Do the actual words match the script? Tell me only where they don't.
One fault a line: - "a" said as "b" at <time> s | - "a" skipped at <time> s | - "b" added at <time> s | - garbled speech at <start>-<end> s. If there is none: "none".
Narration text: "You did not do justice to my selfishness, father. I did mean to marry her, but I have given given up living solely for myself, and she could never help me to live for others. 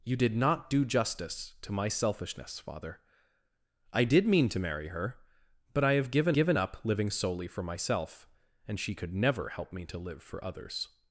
none